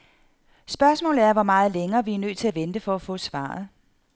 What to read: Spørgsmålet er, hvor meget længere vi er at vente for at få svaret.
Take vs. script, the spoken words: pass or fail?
fail